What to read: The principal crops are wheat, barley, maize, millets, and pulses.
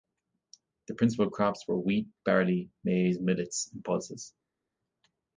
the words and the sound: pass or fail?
fail